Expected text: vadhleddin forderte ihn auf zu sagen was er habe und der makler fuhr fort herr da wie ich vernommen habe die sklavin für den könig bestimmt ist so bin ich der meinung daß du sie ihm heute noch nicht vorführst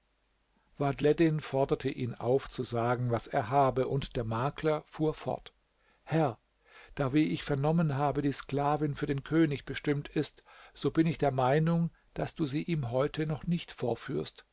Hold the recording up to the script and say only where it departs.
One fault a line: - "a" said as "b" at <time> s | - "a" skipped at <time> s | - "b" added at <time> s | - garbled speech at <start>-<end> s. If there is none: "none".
none